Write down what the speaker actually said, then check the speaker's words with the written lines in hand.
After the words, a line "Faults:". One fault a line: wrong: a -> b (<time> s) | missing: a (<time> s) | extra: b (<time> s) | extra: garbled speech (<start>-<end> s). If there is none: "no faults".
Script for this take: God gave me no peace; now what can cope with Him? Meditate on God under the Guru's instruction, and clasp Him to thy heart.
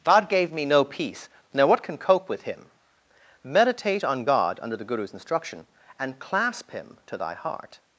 God gave me no peace; now what can cope with Him? Meditate on God under the Guru's instruction, and clasp Him to thy heart.
Faults:
no faults